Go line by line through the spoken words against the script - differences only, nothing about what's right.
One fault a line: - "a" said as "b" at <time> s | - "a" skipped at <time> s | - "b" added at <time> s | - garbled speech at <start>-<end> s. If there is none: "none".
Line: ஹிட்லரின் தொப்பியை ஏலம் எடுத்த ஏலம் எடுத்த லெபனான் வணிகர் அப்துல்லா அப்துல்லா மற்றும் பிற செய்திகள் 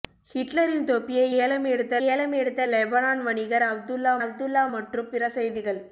none